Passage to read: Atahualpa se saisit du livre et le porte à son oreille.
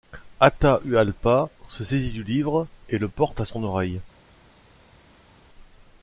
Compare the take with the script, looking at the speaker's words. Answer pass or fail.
pass